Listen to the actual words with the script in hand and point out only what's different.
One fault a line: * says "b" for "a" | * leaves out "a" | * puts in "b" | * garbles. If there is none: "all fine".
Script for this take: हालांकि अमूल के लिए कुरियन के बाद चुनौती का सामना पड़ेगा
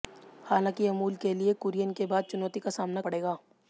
all fine